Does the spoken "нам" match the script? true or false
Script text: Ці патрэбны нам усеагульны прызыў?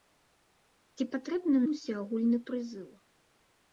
false